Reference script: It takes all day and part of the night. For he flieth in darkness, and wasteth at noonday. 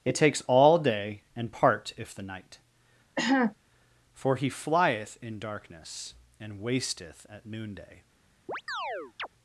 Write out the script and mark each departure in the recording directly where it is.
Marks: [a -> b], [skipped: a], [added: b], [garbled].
It takes all day and part [of -> if] the night. For he flieth in darkness, and wasteth at noonday.